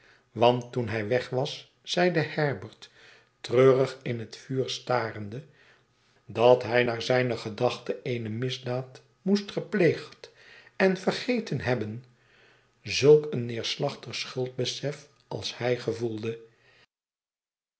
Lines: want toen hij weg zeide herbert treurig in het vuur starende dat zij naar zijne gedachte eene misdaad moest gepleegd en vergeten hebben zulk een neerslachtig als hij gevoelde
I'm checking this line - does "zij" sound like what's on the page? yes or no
no